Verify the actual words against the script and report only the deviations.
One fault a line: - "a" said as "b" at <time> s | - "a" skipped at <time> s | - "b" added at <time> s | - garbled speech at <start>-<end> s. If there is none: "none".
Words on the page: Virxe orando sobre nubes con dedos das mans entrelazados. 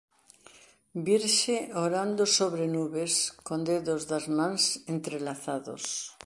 none